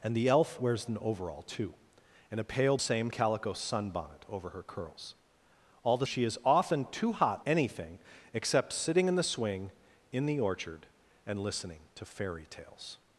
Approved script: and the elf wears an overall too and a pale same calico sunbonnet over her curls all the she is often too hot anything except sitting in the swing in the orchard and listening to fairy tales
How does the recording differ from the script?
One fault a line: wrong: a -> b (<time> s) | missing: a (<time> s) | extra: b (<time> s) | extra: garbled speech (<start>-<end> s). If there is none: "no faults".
no faults